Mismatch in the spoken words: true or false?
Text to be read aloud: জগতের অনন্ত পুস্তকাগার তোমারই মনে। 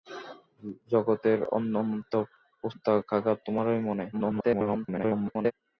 true